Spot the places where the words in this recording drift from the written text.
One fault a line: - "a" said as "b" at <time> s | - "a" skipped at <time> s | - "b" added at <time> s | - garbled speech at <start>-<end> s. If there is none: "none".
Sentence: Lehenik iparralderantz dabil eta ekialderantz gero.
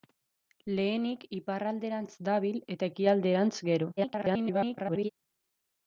- garbled speech at 4.0-5.1 s